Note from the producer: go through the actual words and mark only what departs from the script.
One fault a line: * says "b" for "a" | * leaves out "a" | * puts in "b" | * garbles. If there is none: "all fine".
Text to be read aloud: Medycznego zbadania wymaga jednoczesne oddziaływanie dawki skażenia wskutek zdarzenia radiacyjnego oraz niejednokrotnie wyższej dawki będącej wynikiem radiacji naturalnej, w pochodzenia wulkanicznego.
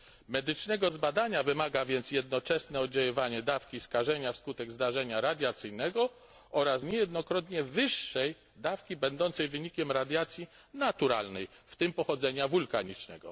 * puts in "więc"
* puts in "tym"